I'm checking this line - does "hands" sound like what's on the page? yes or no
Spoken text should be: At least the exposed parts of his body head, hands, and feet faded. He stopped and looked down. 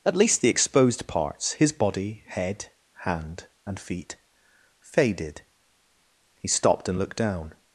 no